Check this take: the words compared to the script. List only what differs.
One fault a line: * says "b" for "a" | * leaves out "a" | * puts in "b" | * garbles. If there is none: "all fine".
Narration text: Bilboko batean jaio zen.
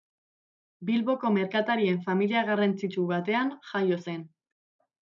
* puts in "merkatarien familia garrantzitsu"